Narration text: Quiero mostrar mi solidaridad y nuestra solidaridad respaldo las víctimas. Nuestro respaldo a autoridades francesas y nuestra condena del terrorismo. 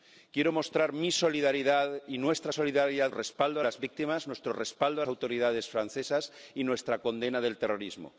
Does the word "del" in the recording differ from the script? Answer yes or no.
no